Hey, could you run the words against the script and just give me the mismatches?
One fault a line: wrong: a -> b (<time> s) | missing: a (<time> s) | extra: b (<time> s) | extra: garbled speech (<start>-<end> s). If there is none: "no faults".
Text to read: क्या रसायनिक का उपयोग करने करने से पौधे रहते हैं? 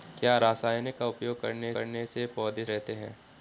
no faults